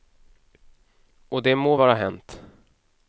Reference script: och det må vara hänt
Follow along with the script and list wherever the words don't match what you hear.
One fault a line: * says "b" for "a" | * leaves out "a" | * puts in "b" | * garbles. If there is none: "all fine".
all fine